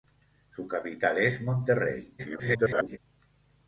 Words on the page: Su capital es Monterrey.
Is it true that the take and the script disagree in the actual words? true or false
true